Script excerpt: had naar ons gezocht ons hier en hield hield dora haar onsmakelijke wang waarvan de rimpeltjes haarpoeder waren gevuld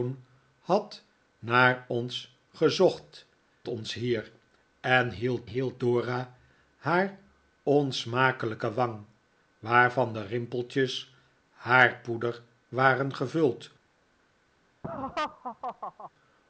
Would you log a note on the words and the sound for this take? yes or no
yes